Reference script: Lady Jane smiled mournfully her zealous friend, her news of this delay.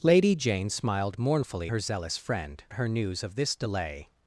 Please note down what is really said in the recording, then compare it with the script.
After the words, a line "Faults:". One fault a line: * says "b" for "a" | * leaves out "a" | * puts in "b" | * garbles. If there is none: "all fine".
Lady Jane smiled mournfully her zealous friend, her news of this delay.
Faults:
all fine